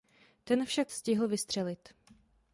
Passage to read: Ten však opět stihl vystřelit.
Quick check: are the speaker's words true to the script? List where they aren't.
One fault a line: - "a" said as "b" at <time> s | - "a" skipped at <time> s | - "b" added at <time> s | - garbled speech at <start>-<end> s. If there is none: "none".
- "opět" skipped at 0.9 s